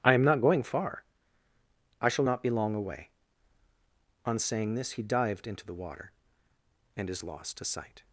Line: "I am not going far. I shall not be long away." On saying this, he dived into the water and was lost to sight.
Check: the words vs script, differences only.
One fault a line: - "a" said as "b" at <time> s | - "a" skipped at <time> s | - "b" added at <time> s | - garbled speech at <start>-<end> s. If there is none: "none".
- "was" said as "is" at 7.1 s